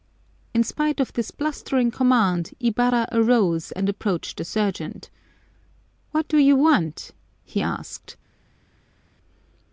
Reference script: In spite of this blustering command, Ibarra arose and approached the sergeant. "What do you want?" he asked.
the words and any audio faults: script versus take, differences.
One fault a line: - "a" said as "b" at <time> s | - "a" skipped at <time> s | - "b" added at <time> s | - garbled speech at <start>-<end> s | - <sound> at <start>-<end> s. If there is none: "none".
none